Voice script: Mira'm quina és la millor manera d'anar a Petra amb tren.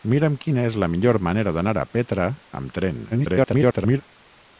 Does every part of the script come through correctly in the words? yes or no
no